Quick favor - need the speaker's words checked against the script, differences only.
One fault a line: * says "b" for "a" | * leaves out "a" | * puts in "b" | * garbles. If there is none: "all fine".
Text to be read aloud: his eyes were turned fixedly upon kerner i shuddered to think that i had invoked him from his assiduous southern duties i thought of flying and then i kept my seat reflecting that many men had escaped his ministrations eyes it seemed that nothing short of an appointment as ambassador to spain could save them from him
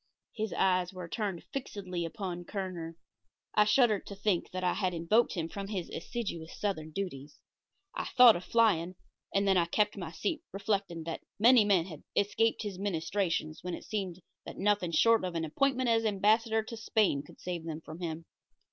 * says "when" for "eyes"